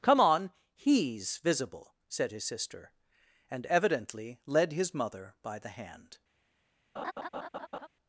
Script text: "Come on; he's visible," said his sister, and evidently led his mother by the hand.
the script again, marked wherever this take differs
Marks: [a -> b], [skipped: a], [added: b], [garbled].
"Come on; he's visible," said his sister, and evidently led his mother by the hand.